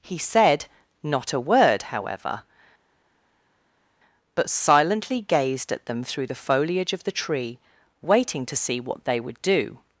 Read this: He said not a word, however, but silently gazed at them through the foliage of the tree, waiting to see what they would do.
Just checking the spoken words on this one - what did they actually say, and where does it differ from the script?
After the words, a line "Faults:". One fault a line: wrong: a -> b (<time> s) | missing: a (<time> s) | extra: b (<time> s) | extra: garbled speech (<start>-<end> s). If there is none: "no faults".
He said not a word, however, but silently gazed at them through the foliage of the tree, waiting to see what they would do.
Faults:
no faults